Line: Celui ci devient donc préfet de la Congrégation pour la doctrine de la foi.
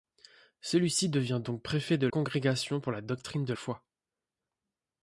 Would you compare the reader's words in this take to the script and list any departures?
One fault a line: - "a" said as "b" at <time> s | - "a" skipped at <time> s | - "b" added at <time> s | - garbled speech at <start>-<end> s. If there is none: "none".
- "la" skipped at 2.1 s
- "la" skipped at 3.5 s